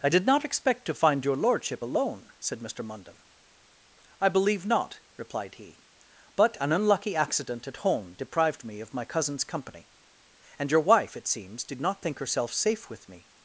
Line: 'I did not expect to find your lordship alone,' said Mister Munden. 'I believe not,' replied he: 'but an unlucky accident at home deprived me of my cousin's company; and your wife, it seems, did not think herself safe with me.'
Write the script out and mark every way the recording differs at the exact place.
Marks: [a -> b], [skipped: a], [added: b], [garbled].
'I did not expect to find your lordship alone,' said Mister Munden. 'I believe not,' replied he: 'but an unlucky accident at home deprived me of my cousin's company; and your wife, it seems, did not think herself safe with me.'